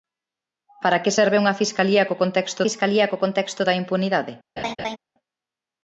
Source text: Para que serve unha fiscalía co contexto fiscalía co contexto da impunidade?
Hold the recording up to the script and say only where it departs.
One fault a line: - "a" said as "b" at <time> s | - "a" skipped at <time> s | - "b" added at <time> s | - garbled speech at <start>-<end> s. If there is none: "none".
none